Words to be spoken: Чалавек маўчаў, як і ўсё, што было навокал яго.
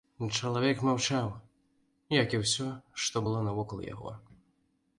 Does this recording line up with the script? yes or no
yes